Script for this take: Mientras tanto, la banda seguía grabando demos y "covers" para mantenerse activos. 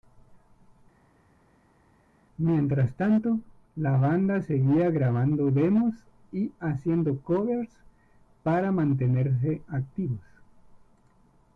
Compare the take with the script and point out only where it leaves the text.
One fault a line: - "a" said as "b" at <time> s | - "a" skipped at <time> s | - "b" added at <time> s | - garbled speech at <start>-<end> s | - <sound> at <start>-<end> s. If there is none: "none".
- "haciendo" added at 6.6 s